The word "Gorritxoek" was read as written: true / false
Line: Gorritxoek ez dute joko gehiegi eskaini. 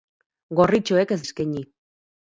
true